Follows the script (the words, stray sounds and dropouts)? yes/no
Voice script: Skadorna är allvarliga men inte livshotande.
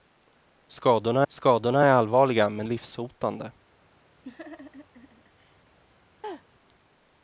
no